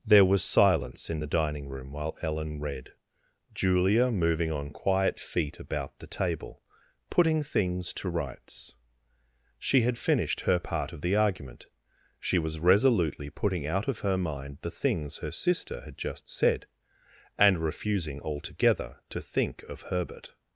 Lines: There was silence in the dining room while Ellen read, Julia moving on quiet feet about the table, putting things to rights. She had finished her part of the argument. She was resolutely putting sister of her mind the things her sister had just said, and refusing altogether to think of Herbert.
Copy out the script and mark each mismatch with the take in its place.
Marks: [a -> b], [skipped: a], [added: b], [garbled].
There was silence in the dining room while Ellen read, Julia moving on quiet feet about the table, putting things to rights. She had finished her part of the argument. She was resolutely putting [sister -> out] of her mind the things her sister had just said, and refusing altogether to think of Herbert.